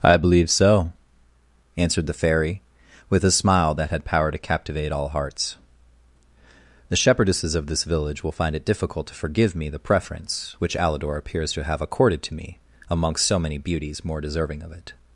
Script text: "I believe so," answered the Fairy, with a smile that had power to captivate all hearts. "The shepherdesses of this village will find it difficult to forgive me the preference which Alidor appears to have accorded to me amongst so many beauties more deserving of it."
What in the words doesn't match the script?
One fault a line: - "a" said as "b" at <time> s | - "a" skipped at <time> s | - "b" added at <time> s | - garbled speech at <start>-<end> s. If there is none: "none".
none